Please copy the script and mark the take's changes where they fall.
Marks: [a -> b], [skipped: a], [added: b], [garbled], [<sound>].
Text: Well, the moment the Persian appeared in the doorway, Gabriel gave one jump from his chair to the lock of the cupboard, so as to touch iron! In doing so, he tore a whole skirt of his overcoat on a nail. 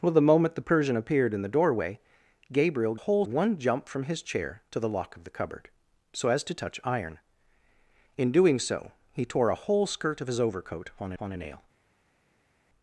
Well, the moment the Persian appeared in the doorway, Gabriel [gave -> whole] one jump from his chair to the lock of the cupboard, so as to touch iron! In doing so, he tore a whole skirt of his overcoat on [added: on] a nail.